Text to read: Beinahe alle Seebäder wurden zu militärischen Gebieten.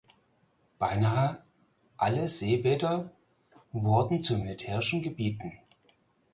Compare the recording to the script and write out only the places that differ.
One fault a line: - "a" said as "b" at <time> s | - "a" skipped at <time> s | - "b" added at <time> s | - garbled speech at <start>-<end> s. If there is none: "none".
none